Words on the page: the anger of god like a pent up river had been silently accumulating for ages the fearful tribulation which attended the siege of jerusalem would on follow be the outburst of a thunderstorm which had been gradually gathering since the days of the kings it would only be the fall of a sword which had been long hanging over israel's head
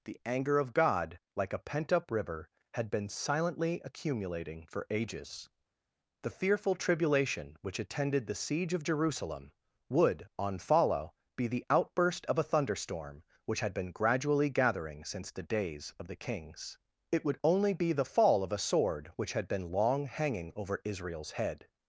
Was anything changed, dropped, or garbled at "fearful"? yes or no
no